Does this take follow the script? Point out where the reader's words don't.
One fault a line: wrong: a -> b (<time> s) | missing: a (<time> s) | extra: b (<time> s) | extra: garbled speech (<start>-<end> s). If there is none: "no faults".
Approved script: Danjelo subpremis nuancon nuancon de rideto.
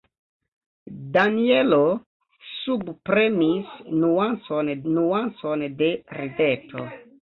no faults